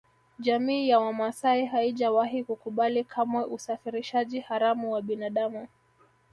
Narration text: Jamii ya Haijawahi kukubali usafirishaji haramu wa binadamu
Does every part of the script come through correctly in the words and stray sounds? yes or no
no